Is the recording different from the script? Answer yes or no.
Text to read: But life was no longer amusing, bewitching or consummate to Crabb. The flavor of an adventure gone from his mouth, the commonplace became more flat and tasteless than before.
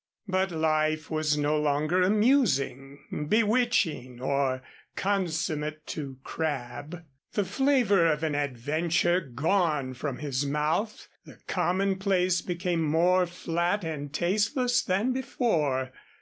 no